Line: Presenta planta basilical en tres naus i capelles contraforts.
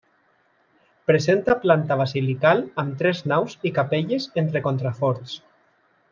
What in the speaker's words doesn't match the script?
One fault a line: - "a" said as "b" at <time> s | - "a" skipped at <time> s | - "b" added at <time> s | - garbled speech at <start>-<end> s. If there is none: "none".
- "en" said as "amb" at 2.9 s
- "entre" added at 4.5 s